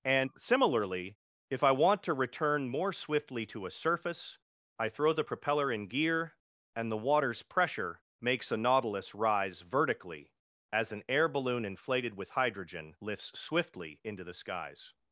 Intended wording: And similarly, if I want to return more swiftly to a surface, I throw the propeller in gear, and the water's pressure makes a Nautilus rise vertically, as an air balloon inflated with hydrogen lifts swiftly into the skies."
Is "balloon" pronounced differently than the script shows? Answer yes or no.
no